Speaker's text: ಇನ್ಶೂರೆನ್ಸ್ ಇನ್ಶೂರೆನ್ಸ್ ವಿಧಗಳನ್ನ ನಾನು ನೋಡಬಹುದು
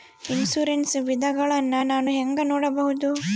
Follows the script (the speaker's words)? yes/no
no